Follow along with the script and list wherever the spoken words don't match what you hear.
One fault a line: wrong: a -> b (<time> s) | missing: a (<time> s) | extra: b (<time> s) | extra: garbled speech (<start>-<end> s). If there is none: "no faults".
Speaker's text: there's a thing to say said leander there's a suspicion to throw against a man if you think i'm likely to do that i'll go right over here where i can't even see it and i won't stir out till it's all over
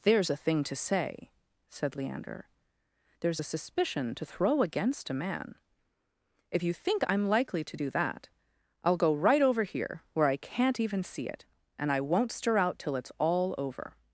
no faults